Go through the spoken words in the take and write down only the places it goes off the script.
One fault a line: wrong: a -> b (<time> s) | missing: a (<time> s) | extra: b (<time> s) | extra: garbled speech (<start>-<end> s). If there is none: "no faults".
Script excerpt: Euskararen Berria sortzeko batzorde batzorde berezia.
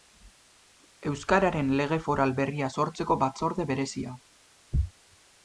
extra: Lege Foral (1.8 s)
missing: batzorde (3.7 s)